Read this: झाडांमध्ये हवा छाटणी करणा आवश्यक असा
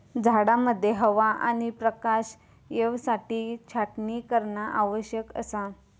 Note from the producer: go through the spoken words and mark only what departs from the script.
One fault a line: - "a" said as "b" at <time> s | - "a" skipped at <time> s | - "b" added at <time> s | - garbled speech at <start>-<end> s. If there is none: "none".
- "आणि प्रकाश येवसाठी" added at 1.4 s